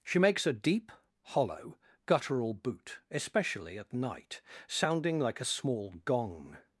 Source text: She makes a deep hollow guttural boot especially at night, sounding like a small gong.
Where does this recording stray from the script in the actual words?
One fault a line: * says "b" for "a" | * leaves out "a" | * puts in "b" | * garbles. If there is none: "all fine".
all fine